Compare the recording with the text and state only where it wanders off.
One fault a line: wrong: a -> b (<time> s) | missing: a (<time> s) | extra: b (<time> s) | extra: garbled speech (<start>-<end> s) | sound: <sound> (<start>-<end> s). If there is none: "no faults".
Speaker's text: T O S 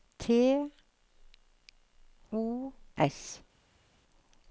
no faults